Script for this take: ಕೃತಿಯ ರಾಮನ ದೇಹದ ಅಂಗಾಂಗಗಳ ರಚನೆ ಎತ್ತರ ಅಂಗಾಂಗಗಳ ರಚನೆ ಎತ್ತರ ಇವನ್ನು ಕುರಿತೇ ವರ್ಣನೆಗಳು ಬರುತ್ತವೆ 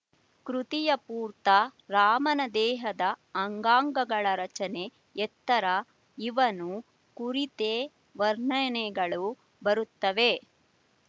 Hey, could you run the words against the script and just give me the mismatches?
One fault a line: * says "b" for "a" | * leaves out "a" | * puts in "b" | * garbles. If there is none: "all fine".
* puts in "ಪೂರ್ತ"
* leaves out "ಅಂಗಾಂಗಗಳ ರಚನೆ ಎತ್ತರ"